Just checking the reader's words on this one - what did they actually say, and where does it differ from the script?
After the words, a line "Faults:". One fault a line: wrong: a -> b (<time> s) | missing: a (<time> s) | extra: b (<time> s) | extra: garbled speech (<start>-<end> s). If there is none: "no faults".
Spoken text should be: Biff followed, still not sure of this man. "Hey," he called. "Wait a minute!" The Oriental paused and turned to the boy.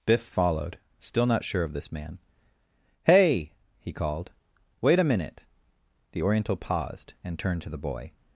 Biff followed, still not sure of this man. "Hey," he called. "Wait a minute!" The Oriental paused and turned to the boy.
Faults:
no faults